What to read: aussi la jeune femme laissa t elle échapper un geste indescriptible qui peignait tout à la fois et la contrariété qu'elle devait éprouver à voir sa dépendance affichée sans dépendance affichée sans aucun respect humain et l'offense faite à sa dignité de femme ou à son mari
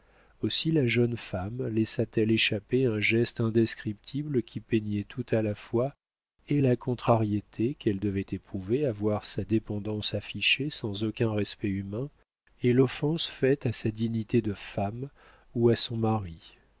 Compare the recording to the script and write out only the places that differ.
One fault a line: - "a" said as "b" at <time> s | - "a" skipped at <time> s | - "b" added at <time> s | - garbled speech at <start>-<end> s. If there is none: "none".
- "dépendance affichée sans" skipped at 11.0 s